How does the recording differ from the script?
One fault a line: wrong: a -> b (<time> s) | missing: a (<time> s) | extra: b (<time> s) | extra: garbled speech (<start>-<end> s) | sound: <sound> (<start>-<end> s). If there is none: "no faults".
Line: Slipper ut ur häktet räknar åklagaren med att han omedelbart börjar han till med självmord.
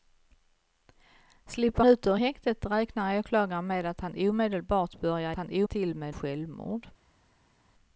no faults